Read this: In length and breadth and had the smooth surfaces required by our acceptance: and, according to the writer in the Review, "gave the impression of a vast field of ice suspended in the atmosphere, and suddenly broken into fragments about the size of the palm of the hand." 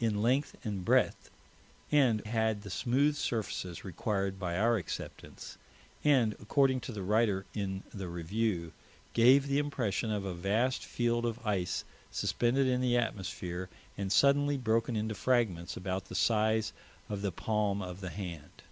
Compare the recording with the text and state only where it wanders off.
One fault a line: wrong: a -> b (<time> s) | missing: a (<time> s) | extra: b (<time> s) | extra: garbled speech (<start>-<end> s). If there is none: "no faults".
no faults